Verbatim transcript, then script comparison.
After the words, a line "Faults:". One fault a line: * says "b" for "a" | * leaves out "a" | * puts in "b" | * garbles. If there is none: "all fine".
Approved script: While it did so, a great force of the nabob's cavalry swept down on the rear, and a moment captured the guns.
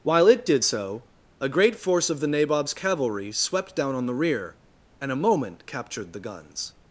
While it did so, a great force of the nabob's cavalry swept down on the rear, and a moment captured the guns.
Faults:
all fine